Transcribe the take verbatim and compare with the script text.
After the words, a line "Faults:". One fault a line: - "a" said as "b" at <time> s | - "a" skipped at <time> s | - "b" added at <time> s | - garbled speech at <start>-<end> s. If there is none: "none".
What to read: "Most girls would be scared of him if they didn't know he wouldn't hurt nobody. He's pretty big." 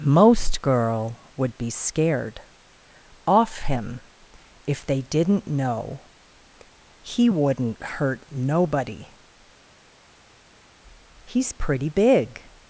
"Most girl would be scared off him if they didn't know he wouldn't hurt nobody. He's pretty big."
Faults:
- "girls" said as "girl" at 0.6 s
- "of" said as "off" at 3.3 s